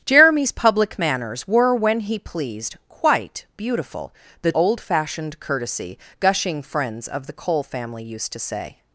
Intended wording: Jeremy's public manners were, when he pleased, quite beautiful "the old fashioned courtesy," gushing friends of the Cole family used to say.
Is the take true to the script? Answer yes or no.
yes